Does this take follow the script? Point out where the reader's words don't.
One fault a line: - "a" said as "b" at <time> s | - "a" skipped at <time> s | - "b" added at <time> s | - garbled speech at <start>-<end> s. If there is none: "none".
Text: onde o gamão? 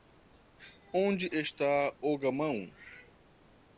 - "está" added at 1.3 s